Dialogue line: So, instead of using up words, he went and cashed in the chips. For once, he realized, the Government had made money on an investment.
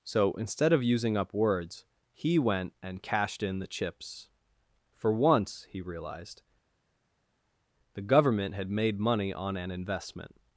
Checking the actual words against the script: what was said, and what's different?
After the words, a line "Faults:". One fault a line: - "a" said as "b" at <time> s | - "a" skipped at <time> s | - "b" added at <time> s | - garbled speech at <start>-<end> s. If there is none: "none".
So, instead of using up words, he went and cashed in the chips. For once, he realized, the Government had made money on an investment.
Faults:
none